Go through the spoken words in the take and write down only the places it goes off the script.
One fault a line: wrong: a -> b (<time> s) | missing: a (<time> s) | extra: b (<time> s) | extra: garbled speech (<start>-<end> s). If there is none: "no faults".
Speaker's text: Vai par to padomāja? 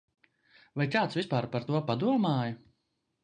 extra: kāds vispār (0.9 s)